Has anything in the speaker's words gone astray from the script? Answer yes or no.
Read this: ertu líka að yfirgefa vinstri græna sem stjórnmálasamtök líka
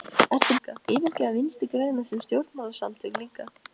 no